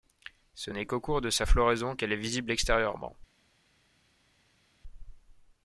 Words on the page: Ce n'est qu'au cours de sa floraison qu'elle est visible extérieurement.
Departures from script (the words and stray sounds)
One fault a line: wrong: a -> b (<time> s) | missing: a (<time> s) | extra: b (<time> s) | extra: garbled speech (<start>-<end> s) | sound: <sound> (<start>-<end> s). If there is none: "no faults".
no faults